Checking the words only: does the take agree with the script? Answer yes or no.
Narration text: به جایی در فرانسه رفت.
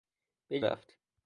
no